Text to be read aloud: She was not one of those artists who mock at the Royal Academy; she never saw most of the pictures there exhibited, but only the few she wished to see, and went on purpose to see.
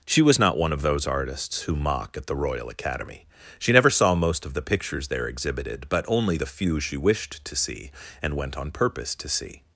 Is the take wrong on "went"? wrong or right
right